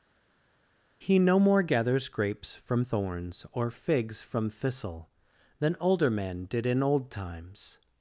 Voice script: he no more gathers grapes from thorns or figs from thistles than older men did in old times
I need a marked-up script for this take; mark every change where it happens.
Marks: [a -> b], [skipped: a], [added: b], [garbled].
he no more gathers grapes from thorns or figs from [thistles -> thistle] than older men did in old times